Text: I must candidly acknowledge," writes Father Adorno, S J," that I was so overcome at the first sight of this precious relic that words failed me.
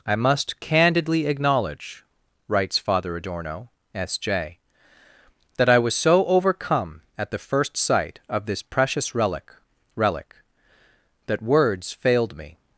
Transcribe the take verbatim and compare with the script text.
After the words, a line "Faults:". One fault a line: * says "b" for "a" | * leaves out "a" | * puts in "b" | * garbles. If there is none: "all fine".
I must candidly acknowledge," writes Father Adorno, S J," that I was so overcome at the first sight of this precious relic relic that words failed me.
Faults:
* puts in "relic"